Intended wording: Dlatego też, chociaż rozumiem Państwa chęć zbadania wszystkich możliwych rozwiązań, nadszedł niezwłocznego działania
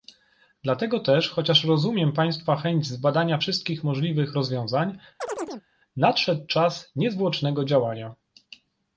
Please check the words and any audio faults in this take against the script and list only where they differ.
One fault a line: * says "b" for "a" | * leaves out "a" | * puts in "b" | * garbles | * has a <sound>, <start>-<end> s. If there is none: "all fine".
* has a chirp, 5.2-5.7 s
* puts in "czas"